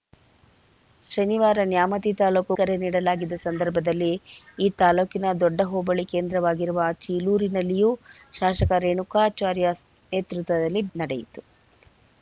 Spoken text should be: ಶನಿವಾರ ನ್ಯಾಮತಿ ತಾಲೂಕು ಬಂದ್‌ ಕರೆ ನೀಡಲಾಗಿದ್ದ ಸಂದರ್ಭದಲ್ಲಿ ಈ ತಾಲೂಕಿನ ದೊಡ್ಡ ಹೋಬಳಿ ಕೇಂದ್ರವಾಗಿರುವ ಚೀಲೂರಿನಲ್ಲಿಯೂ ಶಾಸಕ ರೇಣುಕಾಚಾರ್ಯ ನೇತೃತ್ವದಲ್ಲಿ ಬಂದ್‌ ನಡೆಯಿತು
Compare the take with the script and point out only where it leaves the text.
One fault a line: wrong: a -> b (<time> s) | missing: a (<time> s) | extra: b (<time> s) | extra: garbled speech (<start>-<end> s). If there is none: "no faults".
missing: ಬಂದ್ (2.5 s)
missing: ಬಂದ್ (10.8 s)